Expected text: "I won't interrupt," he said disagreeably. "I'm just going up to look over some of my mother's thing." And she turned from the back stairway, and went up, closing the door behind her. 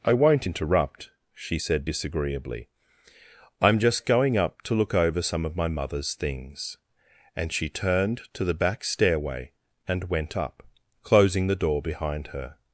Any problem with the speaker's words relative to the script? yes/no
yes